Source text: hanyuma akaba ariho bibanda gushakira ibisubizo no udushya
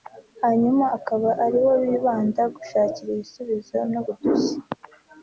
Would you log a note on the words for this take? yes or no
no